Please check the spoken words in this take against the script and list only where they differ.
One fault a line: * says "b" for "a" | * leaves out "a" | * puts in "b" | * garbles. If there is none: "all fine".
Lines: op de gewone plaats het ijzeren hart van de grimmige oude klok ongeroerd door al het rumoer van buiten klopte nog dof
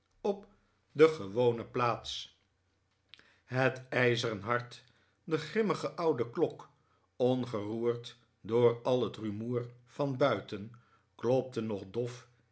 * leaves out "van"